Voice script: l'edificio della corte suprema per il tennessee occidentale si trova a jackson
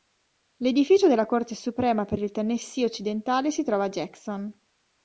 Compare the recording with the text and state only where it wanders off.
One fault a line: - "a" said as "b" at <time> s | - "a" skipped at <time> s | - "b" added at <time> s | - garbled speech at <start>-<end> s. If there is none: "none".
none